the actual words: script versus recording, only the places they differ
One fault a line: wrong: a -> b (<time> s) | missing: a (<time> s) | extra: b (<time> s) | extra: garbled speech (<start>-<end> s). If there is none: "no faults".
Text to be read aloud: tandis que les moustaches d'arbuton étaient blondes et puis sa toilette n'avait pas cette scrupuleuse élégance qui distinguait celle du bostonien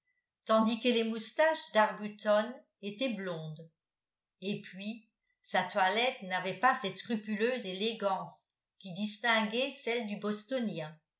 no faults